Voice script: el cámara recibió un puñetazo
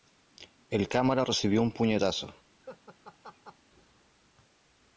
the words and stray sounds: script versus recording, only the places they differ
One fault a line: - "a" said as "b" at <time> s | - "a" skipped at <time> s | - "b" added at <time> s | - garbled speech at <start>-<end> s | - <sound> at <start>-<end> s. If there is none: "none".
- laugh at 2.6-3.6 s